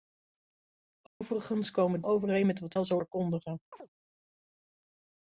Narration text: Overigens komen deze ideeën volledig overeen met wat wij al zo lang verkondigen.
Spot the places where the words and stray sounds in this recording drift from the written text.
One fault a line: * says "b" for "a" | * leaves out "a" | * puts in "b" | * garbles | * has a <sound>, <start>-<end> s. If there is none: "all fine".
* has a dropout, 1.1-1.2 s
* leaves out "deze ideeën volledig"
* leaves out "wij"
* leaves out "lang"
* has a chirp, 3.7-3.9 s